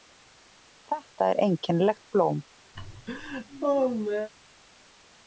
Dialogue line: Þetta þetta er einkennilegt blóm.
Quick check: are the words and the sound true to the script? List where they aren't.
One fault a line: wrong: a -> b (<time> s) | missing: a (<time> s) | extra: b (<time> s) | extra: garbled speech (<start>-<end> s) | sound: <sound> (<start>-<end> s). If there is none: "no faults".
missing: þetta (1.3 s)
sound: laugh (2.7-4.3 s)